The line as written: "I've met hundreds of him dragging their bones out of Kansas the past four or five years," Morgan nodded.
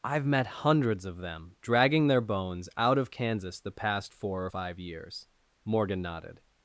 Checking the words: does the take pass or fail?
fail